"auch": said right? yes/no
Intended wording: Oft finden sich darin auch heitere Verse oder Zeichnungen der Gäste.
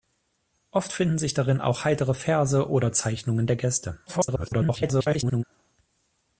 yes